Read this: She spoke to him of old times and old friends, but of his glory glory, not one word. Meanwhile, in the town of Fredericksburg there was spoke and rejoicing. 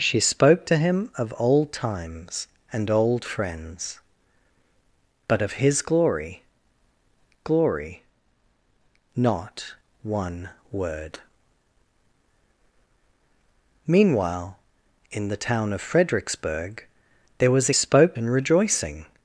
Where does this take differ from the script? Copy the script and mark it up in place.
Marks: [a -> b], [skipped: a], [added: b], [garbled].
She spoke to him of old times and old friends, but of his glory glory, not one word. Meanwhile, in the town of Fredericksburg there was spoke and rejoicing.